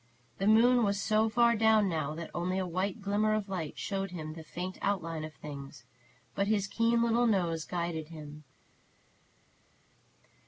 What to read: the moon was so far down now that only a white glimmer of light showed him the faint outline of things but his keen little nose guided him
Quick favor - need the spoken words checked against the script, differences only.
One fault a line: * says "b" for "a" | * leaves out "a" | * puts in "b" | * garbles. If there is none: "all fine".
all fine